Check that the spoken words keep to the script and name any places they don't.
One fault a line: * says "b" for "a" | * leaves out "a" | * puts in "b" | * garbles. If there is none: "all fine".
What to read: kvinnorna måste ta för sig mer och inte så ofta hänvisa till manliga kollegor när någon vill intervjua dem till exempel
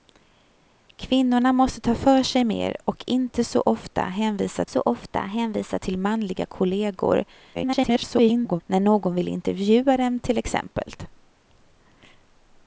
* puts in "så ofta hänvisa"
* garbles